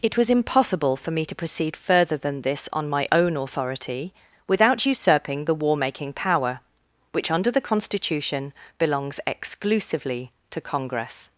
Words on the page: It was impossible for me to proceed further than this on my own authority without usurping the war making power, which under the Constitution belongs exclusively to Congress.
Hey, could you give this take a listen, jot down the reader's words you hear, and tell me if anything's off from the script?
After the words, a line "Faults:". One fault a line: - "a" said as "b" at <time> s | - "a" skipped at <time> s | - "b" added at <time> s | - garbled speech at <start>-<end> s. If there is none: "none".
It was impossible for me to proceed further than this on my own authority without usurping the war making power, which under the Constitution belongs exclusively to Congress.
Faults:
none